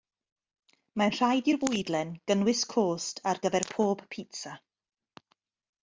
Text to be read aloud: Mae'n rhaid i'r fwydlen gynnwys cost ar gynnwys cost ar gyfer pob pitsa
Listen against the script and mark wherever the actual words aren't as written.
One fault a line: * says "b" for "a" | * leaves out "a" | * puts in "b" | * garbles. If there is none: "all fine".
* leaves out "gynnwys cost ar"